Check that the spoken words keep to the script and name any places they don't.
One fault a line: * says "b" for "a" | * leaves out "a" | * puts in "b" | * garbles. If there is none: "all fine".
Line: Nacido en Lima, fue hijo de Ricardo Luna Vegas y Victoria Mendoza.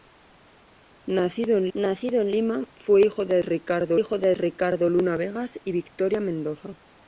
* puts in "nacido en"
* puts in "hijo de Ricardo"